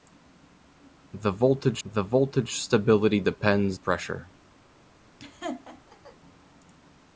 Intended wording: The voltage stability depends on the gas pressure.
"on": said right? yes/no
no